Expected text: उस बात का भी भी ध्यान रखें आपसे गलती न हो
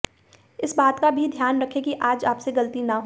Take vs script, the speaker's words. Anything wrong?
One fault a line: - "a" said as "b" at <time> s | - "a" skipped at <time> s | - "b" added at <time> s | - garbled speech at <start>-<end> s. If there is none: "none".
- "उस" said as "इस" at 0.6 s
- "भी" skipped at 1.3 s
- "कि आज" added at 1.8 s